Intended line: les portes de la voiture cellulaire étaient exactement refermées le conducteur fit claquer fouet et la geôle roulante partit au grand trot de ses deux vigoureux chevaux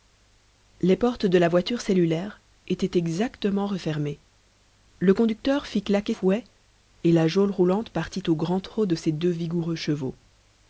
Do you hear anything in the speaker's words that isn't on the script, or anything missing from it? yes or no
no